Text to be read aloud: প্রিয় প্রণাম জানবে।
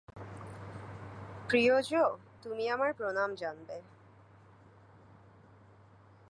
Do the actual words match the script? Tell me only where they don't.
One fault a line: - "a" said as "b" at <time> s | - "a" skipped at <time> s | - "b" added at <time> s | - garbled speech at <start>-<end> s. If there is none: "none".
- "জো তুমি আমার" added at 1.8 s